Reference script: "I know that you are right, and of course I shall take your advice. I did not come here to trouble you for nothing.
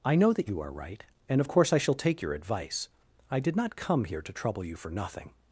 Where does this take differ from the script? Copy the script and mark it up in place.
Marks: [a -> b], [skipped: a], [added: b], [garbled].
"I know that you are right, and of course I shall take your advice. I did not come here to trouble you for nothing.